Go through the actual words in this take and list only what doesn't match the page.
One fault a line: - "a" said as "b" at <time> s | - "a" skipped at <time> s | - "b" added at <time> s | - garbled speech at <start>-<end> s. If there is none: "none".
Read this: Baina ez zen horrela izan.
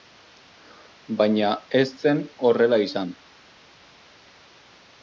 none